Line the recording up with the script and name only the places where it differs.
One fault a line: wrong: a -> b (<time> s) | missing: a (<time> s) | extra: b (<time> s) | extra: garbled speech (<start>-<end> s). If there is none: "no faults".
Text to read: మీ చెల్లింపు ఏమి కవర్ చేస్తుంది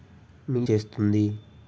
missing: చెల్లింపు ఏమి కవర్ (0.6 s)